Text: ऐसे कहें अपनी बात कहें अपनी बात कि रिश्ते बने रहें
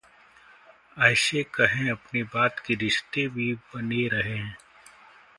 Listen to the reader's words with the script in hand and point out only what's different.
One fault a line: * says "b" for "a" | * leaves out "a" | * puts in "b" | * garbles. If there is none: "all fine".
* leaves out "कहें अपनी बात"
* puts in "भी"